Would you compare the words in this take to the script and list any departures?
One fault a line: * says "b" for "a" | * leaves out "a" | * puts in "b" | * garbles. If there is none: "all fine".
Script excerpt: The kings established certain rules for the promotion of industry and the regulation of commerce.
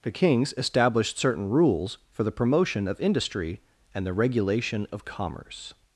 all fine